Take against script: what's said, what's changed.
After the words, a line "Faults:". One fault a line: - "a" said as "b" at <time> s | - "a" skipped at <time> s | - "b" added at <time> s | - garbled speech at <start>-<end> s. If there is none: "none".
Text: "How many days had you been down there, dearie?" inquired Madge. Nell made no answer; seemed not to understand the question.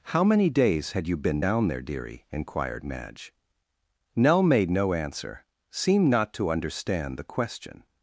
"How many days had you been down there, dearie?" inquired Madge. Nell made no answer; seemed not to understand the question.
Faults:
none